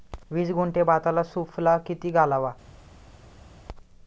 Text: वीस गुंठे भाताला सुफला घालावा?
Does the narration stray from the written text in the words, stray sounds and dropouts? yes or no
yes